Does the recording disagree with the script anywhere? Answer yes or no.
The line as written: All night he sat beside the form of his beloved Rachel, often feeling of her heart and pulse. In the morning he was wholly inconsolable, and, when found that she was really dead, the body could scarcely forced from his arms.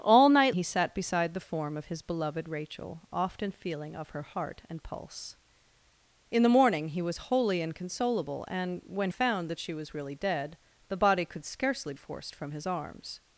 no